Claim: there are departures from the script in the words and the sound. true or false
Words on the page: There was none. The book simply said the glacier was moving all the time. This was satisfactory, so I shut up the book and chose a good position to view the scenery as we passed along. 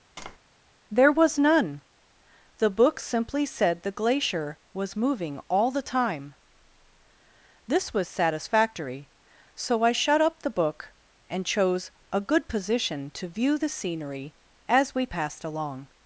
true